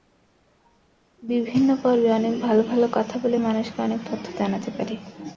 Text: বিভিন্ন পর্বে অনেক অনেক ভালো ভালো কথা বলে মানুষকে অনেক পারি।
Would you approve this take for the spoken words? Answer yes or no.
no